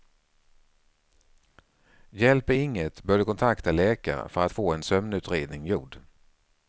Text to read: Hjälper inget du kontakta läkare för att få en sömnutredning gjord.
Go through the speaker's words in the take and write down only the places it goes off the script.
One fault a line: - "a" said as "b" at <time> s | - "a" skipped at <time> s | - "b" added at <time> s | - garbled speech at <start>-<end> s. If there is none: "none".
- "bör" added at 3.0 s